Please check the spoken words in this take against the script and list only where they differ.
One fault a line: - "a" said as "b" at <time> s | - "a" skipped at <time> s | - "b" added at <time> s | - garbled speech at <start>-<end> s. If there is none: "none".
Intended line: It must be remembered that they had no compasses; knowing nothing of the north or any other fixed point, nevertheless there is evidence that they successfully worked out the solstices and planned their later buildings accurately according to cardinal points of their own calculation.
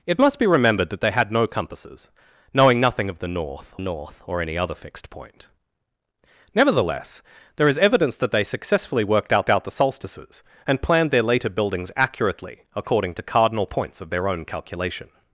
- "north" added at 3.8 s
- "out" added at 9.5 s